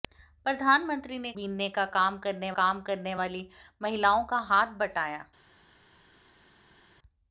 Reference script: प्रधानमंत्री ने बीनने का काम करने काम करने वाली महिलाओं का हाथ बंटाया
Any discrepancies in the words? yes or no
no